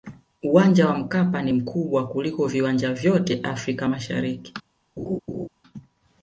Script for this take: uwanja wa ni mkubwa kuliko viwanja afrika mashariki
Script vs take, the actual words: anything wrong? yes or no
yes